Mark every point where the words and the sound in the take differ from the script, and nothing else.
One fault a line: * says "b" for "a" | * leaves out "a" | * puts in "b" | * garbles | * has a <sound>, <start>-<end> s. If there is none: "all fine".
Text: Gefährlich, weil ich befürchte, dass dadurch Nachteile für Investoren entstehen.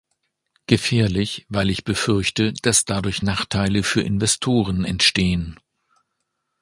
all fine